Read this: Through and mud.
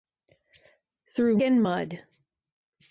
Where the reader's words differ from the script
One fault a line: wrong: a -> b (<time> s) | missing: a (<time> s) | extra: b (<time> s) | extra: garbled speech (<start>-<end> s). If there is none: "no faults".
no faults